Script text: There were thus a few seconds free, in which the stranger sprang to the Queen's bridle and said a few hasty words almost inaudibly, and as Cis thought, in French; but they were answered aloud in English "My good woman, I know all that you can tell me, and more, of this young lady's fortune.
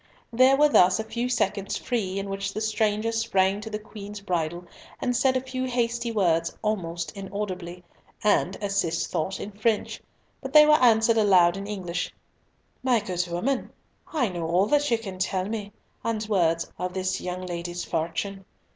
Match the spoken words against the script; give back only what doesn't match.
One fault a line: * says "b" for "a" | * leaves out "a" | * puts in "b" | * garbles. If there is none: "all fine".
* says "words" for "more"